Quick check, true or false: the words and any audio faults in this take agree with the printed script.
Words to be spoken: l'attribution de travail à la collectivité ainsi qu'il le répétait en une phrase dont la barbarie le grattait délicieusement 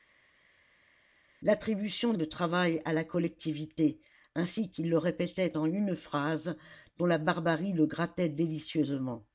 true